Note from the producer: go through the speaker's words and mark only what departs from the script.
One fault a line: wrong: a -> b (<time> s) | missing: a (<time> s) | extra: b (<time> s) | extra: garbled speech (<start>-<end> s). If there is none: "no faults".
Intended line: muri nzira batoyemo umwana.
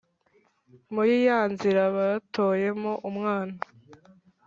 extra: ya (1.3 s)